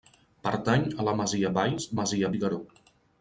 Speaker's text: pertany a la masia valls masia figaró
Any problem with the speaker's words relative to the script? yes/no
no